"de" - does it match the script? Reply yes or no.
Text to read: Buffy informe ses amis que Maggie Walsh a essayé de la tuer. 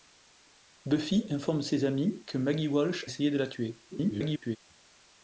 yes